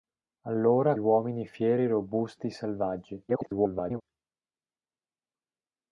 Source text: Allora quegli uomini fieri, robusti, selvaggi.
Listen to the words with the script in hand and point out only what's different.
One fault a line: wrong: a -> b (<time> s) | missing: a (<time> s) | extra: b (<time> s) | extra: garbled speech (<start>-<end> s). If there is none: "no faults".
missing: quegli (0.9 s)
extra: garbled speech (3.3-4.0 s)